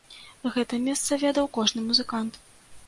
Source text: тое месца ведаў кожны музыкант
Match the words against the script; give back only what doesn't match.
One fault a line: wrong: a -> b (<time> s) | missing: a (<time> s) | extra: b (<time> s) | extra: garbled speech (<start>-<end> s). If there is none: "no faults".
wrong: тое -> гэта (0.6 s)